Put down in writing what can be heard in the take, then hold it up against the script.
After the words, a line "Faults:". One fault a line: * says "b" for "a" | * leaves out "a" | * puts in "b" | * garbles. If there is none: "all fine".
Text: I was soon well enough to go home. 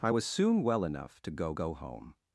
I was soon well enough to go go home.
Faults:
* puts in "go"